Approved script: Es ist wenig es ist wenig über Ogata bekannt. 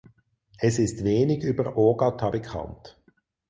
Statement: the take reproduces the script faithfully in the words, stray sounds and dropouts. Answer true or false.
false